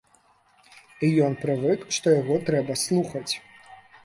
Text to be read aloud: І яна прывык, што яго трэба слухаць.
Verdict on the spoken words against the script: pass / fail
fail